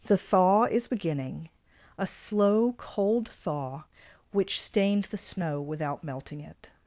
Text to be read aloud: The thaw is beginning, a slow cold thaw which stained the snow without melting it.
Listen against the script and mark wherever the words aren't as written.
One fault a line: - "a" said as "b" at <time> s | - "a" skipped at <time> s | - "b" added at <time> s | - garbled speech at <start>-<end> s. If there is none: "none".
none